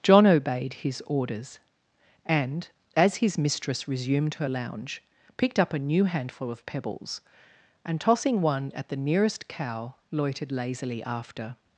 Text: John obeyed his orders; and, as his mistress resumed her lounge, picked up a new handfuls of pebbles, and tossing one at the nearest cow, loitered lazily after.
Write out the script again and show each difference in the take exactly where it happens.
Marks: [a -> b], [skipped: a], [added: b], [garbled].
John obeyed his orders; and, as his mistress resumed her lounge, picked up a new [handfuls -> handful] of pebbles, and tossing one at the nearest cow, loitered lazily after.